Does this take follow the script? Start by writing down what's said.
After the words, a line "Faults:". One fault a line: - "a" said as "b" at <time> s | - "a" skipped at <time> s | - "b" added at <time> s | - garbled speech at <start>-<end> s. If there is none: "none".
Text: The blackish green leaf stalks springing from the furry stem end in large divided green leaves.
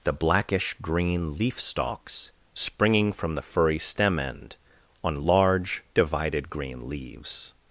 The blackish green leaf stalks springing from the furry stem end on large divided green leaves.
Faults:
- "in" said as "on" at 5.0 s